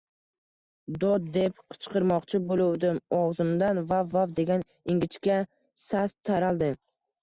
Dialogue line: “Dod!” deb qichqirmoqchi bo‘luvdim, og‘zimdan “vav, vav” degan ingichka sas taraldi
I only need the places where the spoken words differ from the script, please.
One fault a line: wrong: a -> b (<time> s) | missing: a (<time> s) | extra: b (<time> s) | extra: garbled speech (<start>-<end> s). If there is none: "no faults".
no faults